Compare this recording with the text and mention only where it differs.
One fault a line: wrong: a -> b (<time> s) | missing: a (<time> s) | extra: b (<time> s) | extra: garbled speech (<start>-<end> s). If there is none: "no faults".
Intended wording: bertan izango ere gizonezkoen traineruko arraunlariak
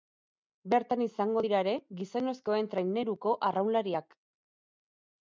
extra: dira (1.4 s)